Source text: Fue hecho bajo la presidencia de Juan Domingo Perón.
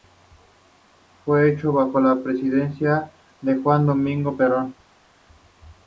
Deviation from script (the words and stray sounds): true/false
false